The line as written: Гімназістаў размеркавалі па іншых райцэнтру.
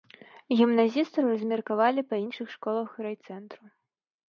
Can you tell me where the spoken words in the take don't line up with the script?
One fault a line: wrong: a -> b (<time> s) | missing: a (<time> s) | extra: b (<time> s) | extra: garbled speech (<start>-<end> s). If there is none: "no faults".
extra: школах (2.6 s)